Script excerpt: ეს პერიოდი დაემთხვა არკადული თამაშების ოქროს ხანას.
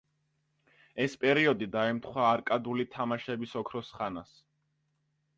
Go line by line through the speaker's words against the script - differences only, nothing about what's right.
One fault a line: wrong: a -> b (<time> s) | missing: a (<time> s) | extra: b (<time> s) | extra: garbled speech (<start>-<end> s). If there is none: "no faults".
no faults